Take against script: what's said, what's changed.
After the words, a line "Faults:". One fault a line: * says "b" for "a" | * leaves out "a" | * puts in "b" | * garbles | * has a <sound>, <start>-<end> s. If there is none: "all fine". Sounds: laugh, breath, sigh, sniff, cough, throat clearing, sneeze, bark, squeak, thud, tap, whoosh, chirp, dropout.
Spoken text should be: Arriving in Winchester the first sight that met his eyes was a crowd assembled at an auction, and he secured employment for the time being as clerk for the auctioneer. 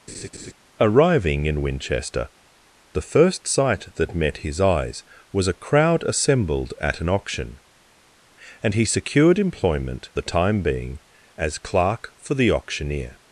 Arriving in Winchester the first sight that met his eyes was a crowd assembled at an auction, and he secured employment the time being as clerk for the auctioneer.
Faults:
* has a laugh, 0.1-0.5 s
* leaves out "for"